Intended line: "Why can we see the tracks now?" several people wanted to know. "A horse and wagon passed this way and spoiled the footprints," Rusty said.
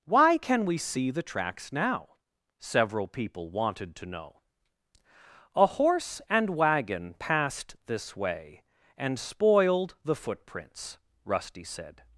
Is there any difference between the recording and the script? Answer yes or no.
no